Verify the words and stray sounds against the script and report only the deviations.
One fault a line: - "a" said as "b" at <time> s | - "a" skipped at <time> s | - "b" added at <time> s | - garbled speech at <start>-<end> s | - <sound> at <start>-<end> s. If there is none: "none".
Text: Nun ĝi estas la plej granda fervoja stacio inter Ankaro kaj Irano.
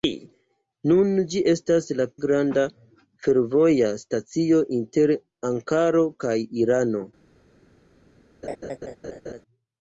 - "plej" skipped at 2.1 s
- laugh at 8.4-9.4 s